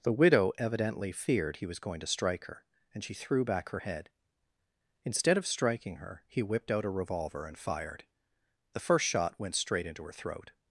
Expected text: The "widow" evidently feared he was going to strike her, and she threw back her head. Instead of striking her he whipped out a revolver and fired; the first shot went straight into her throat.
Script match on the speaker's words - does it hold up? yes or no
yes